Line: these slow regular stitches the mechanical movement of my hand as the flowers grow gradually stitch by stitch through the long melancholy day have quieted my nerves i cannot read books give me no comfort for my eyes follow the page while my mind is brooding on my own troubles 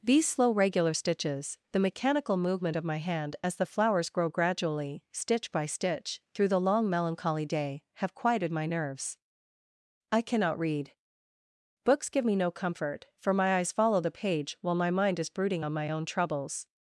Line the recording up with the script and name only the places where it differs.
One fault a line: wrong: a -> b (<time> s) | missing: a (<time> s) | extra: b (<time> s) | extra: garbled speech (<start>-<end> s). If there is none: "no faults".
no faults